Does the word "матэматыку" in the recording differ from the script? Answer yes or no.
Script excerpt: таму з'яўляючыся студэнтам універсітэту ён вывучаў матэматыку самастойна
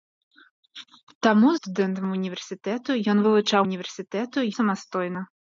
yes